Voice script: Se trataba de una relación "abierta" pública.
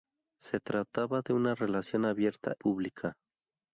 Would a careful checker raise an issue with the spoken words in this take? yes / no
no